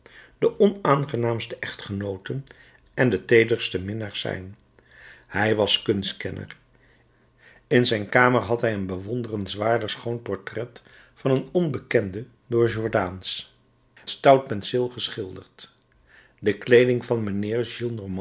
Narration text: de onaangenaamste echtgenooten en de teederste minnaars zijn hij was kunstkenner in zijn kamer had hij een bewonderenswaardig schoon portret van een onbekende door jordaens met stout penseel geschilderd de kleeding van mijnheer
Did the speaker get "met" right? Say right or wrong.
wrong